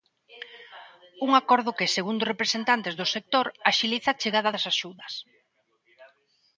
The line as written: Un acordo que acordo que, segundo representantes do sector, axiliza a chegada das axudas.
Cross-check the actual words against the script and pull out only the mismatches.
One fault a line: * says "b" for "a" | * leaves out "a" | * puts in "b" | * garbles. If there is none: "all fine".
* leaves out "acordo que"